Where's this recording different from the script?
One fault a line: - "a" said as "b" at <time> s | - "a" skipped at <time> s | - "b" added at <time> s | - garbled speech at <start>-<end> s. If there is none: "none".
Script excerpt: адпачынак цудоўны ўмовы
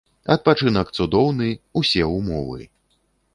- "усе" added at 1.8 s